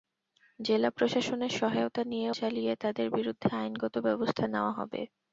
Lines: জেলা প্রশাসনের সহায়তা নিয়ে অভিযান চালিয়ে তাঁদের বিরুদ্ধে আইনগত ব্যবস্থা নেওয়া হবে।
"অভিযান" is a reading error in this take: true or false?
true